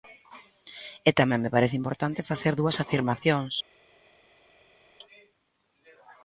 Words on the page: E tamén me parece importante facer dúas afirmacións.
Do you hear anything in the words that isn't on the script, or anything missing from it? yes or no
no